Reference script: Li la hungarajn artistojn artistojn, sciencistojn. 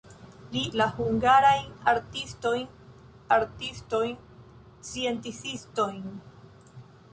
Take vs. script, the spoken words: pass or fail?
pass